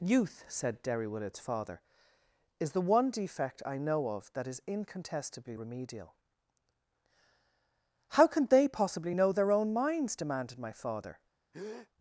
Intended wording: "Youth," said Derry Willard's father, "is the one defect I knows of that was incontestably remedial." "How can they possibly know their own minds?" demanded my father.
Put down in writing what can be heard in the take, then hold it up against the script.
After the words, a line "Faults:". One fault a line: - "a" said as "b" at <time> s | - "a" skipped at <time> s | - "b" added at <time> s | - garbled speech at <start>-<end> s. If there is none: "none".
"Youth," said Derry Willard's father, "is the one defect I know of that is incontestably remedial." "How can they possibly know their own minds?" demanded my father.
Faults:
- "knows" said as "know" at 3.8 s
- "was" said as "is" at 4.5 s